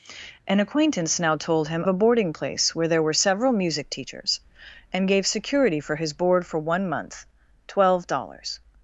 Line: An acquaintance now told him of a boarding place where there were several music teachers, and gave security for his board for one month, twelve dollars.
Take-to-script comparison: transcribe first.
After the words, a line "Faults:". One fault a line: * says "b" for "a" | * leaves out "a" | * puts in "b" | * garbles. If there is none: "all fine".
An acquaintance now told him a boarding place where there were several music teachers, and gave security for his board for one month, twelve dollars.
Faults:
* leaves out "of"